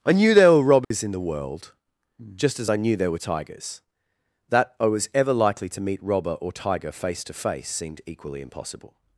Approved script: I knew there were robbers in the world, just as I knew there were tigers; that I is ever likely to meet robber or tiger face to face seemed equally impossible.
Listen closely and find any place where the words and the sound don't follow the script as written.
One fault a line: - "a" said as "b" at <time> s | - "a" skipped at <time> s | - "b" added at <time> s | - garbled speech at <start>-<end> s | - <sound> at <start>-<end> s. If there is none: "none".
- dropout at 0.8-0.9 s
- "is" said as "was" at 4.8 s